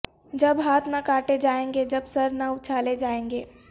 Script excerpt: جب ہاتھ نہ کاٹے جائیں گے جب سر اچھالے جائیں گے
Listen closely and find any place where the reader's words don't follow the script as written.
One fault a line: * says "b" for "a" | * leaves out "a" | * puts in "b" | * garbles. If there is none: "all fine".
* puts in "نہ"